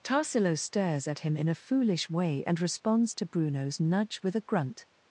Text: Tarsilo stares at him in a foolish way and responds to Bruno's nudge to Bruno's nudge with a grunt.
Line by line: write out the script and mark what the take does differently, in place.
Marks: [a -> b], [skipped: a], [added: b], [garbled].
Tarsilo stares at him in a foolish way and responds to Bruno's nudge [skipped: to Bruno's nudge] with a grunt.